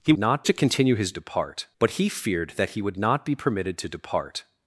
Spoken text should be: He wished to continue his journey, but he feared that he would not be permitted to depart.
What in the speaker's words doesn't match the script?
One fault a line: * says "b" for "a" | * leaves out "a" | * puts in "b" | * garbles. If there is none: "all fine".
* says "not" for "wished"
* says "depart" for "journey"